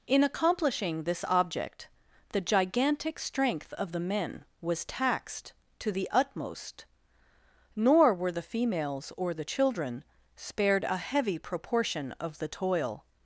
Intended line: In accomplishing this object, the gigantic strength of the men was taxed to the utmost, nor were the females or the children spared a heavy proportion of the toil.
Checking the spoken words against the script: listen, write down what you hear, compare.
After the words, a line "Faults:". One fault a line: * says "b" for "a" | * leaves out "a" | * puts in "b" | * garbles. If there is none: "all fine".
In accomplishing this object, the gigantic strength of the men was taxed to the utmost, nor were the females or the children spared a heavy proportion of the toil.
Faults:
all fine